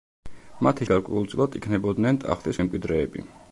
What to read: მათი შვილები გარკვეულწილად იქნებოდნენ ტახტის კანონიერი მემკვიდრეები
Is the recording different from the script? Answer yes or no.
yes